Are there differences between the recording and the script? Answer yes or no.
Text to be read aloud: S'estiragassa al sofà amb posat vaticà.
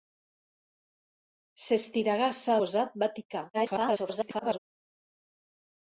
yes